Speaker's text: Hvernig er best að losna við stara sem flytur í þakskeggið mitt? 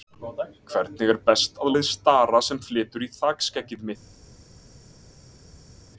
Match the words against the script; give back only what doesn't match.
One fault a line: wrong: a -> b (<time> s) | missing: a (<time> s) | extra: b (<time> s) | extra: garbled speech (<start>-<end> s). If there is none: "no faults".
missing: losna (1.8 s)